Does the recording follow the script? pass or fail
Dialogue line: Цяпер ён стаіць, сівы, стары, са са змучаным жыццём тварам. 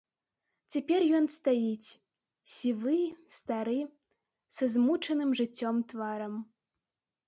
fail